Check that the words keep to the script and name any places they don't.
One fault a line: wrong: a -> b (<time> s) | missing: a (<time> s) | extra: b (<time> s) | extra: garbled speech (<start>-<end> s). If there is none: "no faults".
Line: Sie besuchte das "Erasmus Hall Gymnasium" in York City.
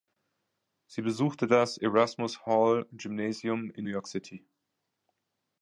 no faults